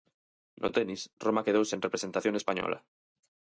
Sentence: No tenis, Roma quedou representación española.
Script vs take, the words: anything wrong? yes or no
yes